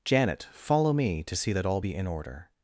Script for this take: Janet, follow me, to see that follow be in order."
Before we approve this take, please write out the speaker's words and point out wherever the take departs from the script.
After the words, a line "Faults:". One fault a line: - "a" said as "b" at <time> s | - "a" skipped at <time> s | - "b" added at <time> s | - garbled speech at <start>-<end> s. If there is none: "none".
Janet, follow me, to see that all be in order."
Faults:
- "follow" said as "all" at 1.6 s